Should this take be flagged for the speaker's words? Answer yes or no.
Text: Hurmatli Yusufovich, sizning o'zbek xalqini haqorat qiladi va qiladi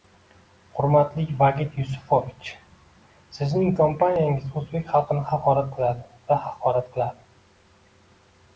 yes